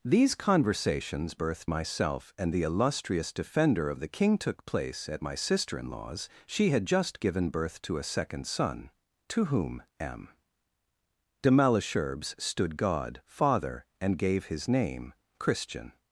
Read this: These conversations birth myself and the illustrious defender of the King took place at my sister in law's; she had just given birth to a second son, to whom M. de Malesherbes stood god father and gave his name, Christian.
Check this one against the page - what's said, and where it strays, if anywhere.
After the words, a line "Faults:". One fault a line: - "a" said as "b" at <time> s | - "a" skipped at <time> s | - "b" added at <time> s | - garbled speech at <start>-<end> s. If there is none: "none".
These conversations birth myself and the illustrious defender of the King took place at my sister in law's; she had just given birth to a second son, to whom M. de Malesherbes stood god father and gave his name, Christian.
Faults:
none